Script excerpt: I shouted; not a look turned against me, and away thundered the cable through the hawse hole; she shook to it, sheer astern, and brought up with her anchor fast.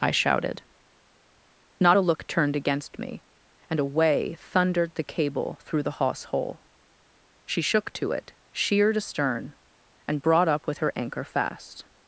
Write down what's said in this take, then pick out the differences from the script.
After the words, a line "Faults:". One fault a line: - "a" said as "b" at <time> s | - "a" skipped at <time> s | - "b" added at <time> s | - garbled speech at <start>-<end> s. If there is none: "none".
I shouted; not a look turned against me, and away thundered the cable through the hawse hole; she shook to it, sheered astern, and brought up with her anchor fast.
Faults:
- "sheer" said as "sheered" at 8.5 s